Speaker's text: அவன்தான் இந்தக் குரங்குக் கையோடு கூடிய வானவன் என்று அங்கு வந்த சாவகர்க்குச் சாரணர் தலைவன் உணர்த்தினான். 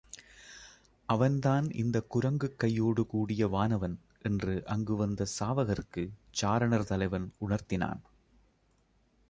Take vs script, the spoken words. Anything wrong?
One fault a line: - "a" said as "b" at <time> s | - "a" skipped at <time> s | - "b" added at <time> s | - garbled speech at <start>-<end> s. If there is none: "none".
none